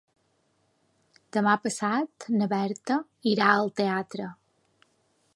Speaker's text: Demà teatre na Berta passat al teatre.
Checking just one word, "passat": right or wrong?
wrong